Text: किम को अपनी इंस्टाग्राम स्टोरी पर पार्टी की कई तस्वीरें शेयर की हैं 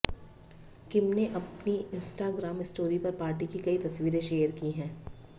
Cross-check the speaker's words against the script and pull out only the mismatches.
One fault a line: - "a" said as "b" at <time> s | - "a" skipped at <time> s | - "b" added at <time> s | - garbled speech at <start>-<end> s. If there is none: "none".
- "को" said as "ने" at 1.1 s